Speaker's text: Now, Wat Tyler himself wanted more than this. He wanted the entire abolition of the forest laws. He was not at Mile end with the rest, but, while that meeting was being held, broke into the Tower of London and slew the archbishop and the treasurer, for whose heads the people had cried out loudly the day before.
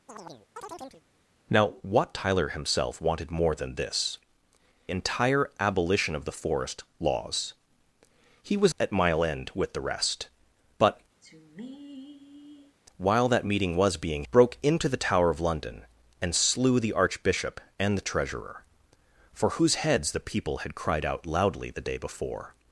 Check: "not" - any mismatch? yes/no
yes